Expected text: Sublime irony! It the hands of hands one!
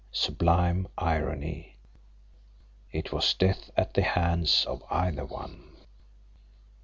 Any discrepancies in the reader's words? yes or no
yes